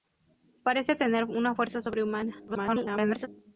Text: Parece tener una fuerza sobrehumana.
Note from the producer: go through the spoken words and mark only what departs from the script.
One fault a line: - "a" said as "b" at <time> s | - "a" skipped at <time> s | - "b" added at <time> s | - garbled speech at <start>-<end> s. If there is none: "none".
- garbled speech at 2.5-3.3 s